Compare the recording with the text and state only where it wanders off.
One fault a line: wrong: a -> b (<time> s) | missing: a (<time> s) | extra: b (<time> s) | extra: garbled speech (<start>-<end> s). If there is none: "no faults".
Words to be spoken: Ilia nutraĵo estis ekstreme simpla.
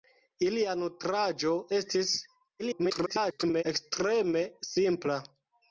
extra: garbled speech (2.6-3.6 s)